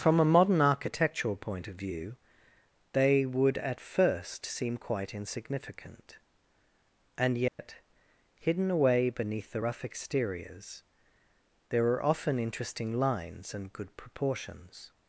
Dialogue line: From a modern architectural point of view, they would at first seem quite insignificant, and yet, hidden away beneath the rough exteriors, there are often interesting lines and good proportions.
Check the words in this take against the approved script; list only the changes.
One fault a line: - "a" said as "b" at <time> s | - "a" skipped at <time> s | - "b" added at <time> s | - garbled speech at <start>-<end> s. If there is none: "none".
none